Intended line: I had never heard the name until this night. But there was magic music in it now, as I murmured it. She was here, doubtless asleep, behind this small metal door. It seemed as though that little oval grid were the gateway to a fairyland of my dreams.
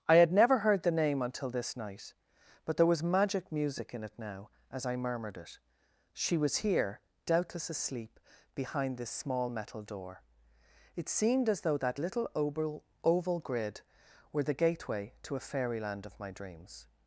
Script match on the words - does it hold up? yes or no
no